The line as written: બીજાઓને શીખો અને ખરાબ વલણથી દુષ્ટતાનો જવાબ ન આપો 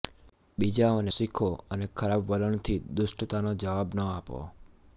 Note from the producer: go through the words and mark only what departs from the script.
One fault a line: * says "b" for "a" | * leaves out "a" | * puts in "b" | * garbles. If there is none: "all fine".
all fine